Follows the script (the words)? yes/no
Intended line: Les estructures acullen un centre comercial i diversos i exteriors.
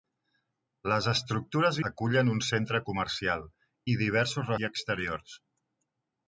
yes